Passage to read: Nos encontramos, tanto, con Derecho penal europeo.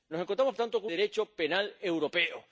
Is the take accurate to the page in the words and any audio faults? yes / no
yes